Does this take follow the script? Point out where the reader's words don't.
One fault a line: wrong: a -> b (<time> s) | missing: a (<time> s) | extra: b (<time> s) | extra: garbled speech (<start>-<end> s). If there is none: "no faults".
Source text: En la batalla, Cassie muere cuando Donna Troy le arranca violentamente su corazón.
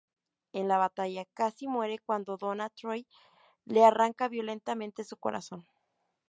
no faults